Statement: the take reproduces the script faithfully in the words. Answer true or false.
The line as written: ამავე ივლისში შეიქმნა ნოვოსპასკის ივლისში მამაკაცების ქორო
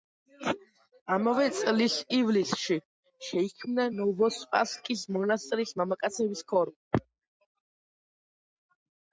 false